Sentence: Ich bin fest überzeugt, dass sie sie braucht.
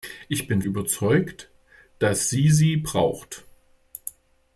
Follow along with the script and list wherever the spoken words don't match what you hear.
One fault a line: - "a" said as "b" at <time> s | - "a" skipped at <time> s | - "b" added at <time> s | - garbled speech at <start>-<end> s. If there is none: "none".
- "fest" skipped at 0.6 s